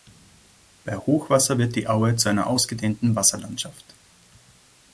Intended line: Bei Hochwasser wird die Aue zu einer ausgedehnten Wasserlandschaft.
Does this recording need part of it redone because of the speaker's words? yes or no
no